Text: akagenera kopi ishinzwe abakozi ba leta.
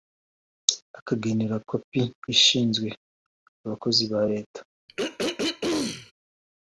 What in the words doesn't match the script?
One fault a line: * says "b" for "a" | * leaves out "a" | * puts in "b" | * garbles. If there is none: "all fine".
all fine